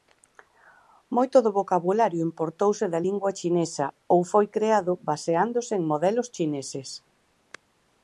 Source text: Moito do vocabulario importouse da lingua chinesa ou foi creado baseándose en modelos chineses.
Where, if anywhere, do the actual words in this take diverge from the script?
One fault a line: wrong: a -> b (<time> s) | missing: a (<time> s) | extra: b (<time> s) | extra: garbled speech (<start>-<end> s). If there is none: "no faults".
no faults